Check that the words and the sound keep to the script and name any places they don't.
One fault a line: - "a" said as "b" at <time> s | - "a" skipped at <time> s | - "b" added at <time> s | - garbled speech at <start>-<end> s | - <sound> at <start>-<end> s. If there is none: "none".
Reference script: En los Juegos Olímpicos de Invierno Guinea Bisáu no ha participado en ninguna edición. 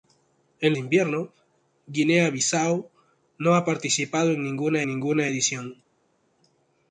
- "los Juegos Olímpicos" skipped at 0.7 s
- "ninguna" added at 4.8 s